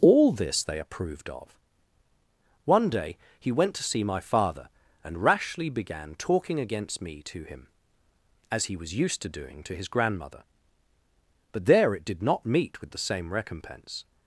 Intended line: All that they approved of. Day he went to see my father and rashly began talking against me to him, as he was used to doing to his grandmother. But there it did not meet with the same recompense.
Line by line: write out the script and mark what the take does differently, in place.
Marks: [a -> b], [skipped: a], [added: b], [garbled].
All [that -> this] they approved of. [added: One] Day he went to see my father and rashly began talking against me to him, as he was used to doing to his grandmother. But there it did not meet with the same recompense.